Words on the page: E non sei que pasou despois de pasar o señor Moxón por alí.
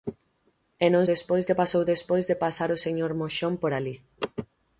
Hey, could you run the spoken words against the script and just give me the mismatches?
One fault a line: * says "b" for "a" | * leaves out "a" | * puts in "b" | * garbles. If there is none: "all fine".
* says "despois" for "sei"